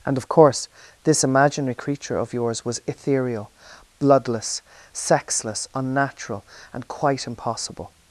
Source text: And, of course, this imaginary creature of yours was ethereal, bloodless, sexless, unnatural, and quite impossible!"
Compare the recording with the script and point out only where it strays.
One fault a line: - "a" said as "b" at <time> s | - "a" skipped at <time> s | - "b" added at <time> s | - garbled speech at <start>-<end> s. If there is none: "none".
none